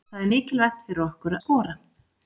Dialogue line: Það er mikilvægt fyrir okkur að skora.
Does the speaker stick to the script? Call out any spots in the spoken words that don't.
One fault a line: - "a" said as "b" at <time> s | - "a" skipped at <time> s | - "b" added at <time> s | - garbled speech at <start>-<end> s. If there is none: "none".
- "að" skipped at 1.3 s